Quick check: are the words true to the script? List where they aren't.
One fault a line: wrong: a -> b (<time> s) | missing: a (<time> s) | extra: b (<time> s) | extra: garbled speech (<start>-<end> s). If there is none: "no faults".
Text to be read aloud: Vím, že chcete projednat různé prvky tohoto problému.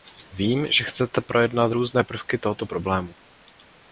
no faults